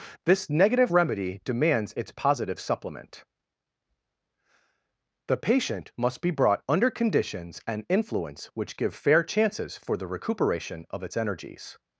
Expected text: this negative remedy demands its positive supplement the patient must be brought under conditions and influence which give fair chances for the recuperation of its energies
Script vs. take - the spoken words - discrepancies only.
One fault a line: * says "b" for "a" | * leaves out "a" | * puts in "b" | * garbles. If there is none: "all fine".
all fine